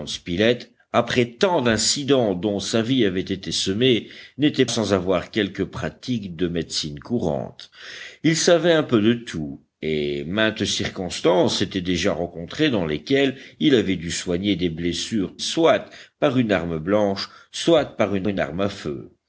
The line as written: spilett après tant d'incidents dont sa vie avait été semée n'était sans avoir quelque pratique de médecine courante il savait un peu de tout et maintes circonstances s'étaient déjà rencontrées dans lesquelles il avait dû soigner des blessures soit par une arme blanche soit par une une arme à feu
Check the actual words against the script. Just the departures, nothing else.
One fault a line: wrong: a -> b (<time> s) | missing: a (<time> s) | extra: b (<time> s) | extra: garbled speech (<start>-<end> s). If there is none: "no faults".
no faults